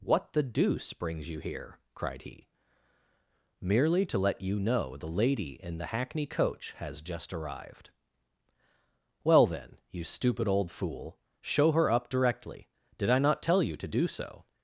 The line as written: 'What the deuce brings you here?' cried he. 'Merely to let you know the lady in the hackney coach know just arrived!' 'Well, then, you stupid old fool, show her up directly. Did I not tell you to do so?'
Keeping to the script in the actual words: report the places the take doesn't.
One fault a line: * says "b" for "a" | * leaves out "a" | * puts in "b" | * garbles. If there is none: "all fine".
* says "has" for "know"